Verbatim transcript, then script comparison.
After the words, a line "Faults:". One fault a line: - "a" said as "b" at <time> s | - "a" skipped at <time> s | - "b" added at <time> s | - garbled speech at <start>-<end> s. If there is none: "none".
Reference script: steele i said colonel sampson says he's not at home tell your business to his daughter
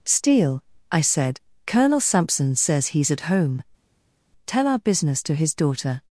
steele i said colonel sampson says he's at home tell our business to his daughter
Faults:
- "not" skipped at 3.1 s
- "your" said as "our" at 4.7 s